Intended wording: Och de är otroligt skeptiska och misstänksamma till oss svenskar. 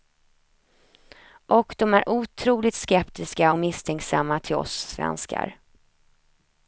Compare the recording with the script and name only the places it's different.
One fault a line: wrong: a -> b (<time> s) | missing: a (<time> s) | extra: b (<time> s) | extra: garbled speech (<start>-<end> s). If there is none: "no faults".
no faults